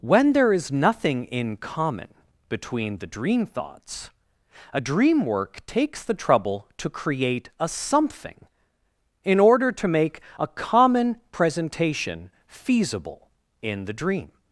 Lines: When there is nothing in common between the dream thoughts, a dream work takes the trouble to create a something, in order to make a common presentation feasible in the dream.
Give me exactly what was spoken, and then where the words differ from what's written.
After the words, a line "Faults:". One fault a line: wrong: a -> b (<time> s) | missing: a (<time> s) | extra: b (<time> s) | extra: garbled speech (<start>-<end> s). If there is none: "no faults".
When there is nothing in common between the dream thoughts, a dream work takes the trouble to create a something, in order to make a common presentation feasible in the dream.
Faults:
no faults